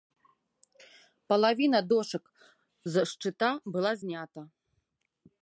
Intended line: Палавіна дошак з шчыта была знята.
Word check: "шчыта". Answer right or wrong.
right